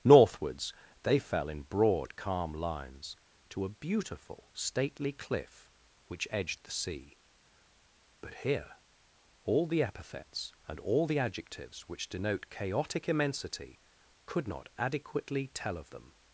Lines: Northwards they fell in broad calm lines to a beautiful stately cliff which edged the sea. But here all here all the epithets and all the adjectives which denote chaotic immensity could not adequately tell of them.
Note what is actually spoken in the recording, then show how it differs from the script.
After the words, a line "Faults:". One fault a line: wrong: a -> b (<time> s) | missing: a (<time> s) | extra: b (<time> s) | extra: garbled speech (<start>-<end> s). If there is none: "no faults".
Northwards they fell in broad calm lines to a beautiful stately cliff which edged the sea. But here all the epithets and all the adjectives which denote chaotic immensity could not adequately tell of them.
Faults:
missing: here all (9.7 s)